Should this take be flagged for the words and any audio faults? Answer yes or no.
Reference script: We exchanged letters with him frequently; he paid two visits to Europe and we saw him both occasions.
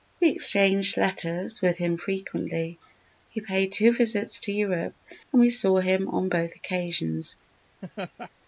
yes